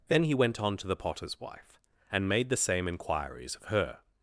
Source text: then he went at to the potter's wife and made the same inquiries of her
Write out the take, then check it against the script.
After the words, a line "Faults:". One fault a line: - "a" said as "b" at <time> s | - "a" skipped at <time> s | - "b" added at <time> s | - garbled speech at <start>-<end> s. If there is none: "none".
then he went on to the potter's wife and made the same inquiries of her
Faults:
- "at" said as "on" at 0.6 s